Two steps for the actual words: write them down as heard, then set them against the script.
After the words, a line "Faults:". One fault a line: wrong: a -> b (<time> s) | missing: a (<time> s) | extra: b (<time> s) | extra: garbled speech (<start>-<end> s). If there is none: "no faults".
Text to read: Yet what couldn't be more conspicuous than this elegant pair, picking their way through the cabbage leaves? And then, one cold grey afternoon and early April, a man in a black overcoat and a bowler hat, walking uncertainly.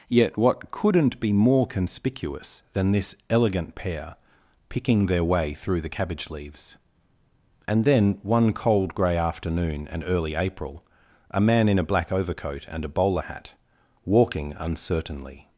Yet what couldn't be more conspicuous than this elegant pair, picking their way through the cabbage leaves? And then, one cold grey afternoon and early April, a man in a black overcoat and a bowler hat, walking uncertainly.
Faults:
no faults